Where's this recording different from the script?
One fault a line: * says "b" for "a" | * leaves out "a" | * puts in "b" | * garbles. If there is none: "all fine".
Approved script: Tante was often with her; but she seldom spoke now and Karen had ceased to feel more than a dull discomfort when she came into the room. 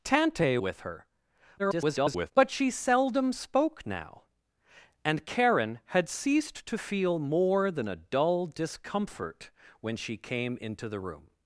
* leaves out "was often"
* garbles